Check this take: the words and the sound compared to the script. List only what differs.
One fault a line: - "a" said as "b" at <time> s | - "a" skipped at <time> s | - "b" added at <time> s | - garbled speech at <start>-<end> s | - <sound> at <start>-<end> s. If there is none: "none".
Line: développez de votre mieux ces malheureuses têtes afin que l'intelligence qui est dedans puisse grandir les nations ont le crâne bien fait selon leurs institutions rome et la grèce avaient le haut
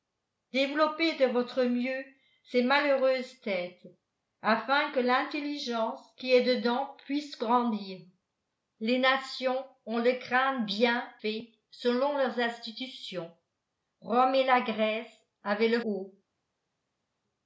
none